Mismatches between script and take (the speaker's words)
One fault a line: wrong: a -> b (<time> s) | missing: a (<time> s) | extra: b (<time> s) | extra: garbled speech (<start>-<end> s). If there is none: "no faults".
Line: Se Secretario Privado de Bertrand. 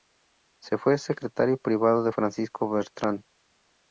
extra: fue (0.8 s)
extra: Francisco (2.1 s)